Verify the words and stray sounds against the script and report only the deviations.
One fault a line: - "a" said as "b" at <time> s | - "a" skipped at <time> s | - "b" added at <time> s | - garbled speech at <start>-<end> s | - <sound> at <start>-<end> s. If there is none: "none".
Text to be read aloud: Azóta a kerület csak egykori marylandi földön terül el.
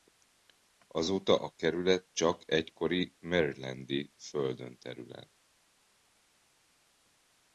none